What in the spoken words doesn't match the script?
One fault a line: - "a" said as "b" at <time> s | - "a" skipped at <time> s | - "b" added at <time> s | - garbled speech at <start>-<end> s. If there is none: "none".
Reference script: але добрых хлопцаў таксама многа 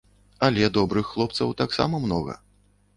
none